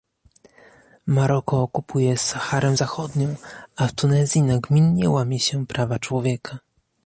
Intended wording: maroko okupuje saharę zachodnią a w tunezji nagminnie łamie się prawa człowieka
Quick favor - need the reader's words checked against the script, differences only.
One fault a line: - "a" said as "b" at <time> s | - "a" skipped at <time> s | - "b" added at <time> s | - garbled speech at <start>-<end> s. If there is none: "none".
none